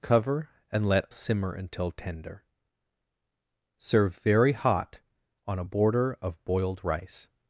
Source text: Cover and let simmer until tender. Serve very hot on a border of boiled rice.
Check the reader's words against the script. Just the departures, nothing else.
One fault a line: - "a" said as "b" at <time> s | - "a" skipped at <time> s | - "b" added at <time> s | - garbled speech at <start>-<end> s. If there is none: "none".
none